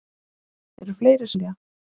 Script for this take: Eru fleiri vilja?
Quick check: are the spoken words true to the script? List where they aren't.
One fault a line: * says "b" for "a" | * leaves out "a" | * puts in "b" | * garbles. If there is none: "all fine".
all fine